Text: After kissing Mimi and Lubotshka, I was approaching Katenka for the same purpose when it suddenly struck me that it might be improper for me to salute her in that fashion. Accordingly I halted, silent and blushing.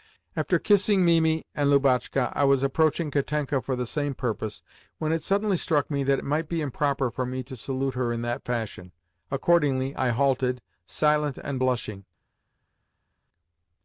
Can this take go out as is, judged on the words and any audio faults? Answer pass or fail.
pass